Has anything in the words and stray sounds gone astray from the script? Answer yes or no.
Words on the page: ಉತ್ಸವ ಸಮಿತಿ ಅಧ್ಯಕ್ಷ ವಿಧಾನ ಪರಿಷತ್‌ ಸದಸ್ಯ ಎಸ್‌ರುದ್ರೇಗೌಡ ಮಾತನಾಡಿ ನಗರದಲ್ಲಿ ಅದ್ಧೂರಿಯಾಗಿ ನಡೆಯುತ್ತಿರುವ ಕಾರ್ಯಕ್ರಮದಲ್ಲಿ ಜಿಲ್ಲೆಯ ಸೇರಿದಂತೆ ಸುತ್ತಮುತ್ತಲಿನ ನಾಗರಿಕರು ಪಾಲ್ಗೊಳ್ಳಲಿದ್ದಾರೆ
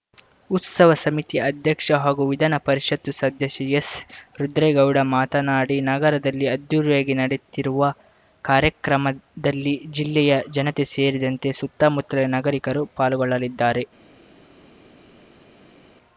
yes